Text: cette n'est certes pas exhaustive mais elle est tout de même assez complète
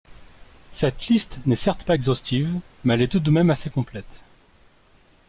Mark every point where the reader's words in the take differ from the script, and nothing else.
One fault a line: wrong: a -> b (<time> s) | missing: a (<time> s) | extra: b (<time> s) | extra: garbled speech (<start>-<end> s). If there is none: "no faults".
extra: liste (1.1 s)